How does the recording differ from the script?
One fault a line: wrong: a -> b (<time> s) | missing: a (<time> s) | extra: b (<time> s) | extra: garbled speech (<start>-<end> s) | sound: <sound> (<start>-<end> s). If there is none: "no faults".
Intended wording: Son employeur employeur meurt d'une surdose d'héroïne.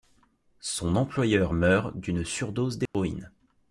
missing: employeur (1.5 s)
sound: dropout (2.9-2.9 s)